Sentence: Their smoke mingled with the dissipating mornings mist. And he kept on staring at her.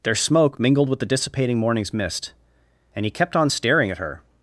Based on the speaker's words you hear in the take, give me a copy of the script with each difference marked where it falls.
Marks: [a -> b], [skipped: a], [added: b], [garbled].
Their smoke mingled with the dissipating mornings mist. And he kept on staring at her.